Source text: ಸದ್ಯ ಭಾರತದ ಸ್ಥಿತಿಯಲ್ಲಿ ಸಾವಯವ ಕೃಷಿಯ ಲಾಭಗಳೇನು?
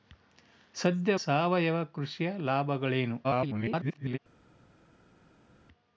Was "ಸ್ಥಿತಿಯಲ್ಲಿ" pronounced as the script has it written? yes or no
no